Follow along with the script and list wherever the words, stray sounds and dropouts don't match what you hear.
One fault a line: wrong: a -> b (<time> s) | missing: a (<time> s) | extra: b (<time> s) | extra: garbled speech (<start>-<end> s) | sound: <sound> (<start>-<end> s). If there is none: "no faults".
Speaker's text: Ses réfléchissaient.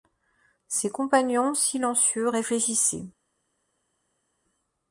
extra: compagnons silencieux (0.9 s)